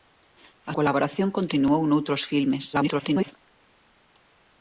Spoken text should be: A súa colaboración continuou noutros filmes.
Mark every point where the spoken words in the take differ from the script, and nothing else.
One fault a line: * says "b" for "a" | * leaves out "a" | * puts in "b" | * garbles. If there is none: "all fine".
* leaves out "súa"
* garbles